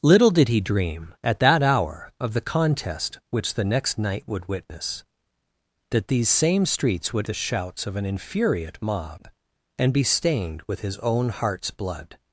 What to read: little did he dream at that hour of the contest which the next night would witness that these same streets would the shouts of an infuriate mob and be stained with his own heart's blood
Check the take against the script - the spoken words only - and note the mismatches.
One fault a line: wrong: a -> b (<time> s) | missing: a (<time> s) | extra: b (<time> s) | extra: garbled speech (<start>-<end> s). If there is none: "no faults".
no faults